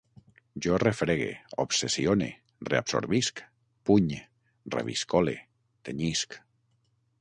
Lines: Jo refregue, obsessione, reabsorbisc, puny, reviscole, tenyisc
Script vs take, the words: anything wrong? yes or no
no